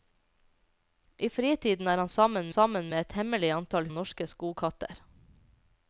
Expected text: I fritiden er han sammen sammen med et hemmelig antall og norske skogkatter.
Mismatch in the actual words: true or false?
false